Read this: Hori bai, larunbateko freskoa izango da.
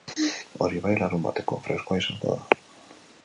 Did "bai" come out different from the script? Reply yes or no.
no